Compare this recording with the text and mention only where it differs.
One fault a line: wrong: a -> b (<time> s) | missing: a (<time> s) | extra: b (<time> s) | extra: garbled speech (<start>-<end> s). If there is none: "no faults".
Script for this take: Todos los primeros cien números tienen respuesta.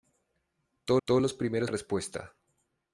extra: todos (1.0 s)
missing: cien números tienen (1.7 s)